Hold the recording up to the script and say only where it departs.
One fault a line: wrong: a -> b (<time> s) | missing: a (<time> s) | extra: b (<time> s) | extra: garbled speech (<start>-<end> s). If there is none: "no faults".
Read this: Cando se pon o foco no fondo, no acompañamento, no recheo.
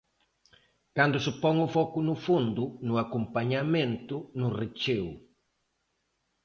no faults